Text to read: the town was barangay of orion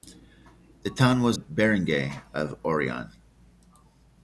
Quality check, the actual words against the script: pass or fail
pass